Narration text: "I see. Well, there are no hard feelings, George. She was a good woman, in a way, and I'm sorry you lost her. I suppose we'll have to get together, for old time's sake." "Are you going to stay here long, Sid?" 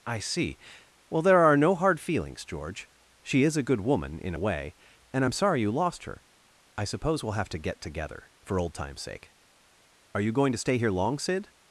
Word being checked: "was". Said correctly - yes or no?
no